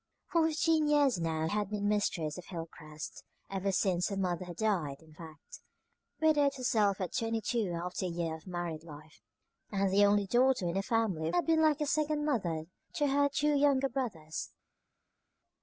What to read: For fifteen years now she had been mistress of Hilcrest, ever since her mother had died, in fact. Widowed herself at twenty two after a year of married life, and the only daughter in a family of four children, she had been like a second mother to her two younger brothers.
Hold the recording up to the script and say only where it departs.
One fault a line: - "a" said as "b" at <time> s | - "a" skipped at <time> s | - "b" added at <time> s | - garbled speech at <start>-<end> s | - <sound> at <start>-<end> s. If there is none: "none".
- "she" skipped at 1.5 s
- "four children she" skipped at 11.4 s